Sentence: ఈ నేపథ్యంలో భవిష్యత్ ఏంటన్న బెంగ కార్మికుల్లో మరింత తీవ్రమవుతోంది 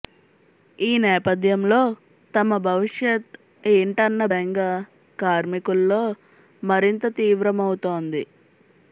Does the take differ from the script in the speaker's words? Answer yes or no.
yes